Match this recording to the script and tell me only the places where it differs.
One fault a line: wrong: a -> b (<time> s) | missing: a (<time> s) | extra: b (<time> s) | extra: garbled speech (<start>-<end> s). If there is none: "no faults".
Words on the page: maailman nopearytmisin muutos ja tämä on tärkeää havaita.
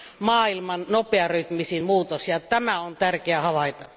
no faults